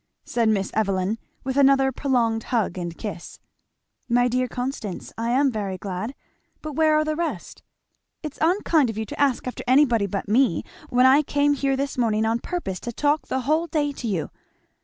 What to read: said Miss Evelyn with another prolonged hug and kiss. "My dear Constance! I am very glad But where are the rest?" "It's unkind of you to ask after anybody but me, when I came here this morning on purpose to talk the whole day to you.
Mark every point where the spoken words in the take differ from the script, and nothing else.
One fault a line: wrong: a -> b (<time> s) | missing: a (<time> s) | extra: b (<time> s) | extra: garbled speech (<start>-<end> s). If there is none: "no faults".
no faults